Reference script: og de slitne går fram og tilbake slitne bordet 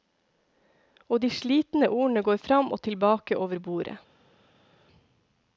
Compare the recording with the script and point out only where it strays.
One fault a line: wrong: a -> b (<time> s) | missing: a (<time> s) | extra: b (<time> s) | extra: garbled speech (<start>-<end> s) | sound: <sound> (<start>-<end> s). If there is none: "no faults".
extra: ordene (1.9 s)
wrong: slitne -> over (3.4 s)